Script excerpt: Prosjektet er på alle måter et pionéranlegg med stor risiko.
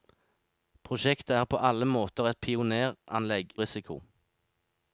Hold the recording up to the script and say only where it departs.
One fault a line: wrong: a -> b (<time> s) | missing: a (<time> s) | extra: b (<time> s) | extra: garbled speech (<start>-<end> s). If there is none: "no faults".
missing: med stor (3.5 s)